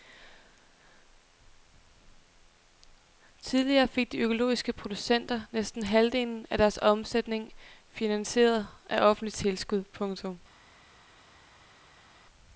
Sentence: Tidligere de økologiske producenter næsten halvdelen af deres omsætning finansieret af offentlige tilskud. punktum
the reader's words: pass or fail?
fail